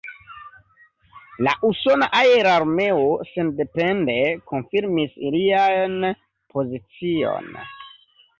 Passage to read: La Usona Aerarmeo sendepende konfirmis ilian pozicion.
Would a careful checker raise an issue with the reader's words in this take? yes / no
no